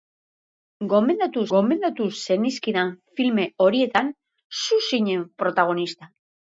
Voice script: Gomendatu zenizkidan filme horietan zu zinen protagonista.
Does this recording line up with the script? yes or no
no